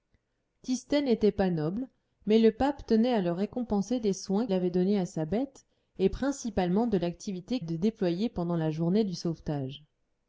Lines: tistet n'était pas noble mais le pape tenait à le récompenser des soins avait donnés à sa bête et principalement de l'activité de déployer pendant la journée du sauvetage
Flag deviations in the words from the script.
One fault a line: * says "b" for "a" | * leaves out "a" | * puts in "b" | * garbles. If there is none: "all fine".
all fine